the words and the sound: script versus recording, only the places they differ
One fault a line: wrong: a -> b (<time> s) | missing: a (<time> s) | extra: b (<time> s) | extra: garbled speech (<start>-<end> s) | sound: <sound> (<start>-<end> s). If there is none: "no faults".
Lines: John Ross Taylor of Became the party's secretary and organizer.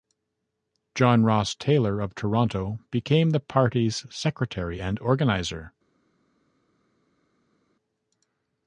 extra: Toronto (2.1 s)